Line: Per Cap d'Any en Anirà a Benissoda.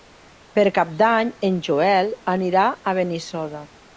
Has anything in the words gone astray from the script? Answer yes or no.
yes